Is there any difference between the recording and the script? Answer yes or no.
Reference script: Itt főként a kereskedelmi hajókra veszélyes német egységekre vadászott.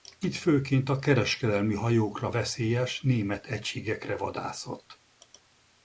no